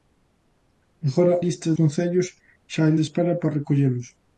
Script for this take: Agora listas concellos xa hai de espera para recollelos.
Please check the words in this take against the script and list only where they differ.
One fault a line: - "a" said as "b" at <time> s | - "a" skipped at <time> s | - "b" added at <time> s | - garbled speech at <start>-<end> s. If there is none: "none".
none